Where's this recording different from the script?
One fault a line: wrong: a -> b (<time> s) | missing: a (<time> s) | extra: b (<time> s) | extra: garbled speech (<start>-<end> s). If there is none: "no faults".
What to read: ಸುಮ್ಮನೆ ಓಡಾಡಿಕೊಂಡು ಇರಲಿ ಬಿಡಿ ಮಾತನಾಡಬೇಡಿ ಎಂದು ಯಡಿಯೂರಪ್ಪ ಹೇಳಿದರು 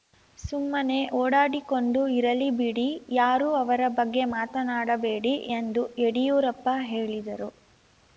extra: ಯಾರೂ ಅವರ ಬಗ್ಗೆ (3.1 s)